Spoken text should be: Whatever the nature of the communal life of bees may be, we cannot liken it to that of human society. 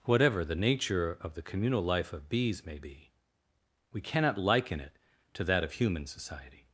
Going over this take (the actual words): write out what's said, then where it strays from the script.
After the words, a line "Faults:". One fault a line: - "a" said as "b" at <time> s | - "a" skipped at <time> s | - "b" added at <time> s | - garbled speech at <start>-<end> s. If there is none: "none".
Whatever the nature of the communal life of bees may be, we cannot liken it to that of human society.
Faults:
none